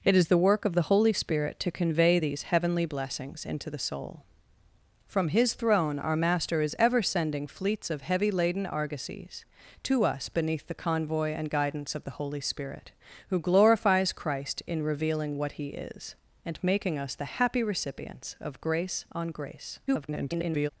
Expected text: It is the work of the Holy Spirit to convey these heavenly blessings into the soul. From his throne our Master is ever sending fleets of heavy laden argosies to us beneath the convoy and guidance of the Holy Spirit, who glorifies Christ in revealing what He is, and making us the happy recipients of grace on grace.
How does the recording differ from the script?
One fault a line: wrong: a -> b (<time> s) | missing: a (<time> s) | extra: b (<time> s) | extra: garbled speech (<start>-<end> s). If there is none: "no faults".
extra: garbled speech (19.9-20.7 s)